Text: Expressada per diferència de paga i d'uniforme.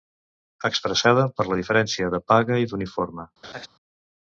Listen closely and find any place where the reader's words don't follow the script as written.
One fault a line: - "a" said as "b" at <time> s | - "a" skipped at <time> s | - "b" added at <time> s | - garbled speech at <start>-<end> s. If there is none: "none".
- "la" added at 1.5 s